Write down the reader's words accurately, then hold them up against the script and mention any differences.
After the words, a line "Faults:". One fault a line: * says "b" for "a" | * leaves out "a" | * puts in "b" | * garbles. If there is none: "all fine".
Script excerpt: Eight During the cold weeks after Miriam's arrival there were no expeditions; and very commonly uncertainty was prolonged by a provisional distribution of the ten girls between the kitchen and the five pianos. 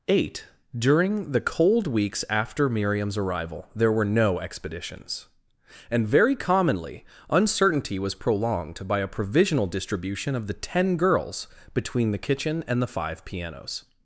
Eight During the cold weeks after Miriam's arrival there were no expeditions; and very commonly uncertainty was prolonged by a provisional distribution of the ten girls between the kitchen and the five pianos.
Faults:
all fine